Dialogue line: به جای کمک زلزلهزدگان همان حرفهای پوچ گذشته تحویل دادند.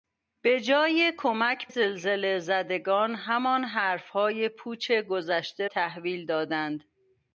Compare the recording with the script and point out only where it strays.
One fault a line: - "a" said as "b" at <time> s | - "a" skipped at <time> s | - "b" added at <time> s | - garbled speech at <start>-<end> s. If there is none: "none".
none